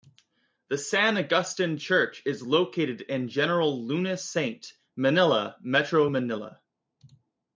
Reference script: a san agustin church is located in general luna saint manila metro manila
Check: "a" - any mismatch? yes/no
yes